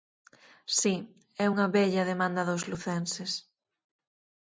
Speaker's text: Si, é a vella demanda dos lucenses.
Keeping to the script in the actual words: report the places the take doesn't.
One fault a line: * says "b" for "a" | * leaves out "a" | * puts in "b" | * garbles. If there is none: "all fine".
* says "unha" for "a"